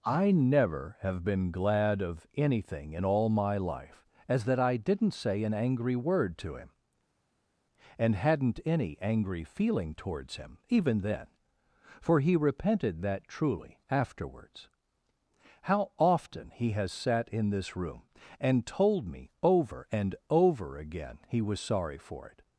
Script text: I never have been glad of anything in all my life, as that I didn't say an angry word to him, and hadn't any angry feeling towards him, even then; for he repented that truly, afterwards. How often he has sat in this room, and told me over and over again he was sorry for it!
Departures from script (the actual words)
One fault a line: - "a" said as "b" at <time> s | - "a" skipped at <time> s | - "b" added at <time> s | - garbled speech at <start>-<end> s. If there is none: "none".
none